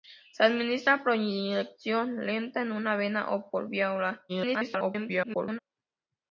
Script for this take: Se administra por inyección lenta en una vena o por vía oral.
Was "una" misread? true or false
false